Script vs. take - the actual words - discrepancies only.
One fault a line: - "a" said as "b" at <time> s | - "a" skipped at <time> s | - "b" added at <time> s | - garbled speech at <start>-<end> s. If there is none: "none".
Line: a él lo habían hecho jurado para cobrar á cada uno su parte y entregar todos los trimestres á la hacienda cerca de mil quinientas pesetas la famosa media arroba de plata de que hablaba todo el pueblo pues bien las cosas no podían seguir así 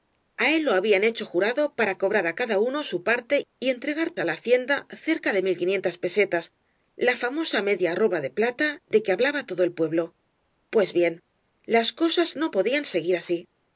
- "todos los trimestres" skipped at 4.1 s